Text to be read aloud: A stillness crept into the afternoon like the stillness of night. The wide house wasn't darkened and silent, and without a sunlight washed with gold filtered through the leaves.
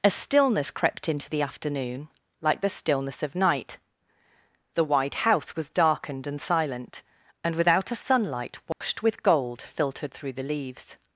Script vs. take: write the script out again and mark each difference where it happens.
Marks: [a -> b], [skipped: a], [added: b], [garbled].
A stillness crept into the afternoon like the stillness of night. The wide house [wasn't -> was] darkened and silent, and without a sunlight washed with gold filtered through the leaves.